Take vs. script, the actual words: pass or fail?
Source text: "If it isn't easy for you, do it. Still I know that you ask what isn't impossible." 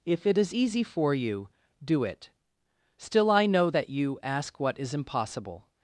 fail